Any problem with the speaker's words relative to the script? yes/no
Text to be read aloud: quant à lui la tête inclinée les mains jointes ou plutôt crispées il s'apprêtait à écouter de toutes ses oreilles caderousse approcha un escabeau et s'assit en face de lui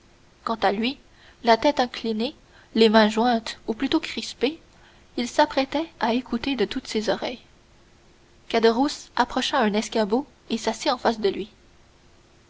no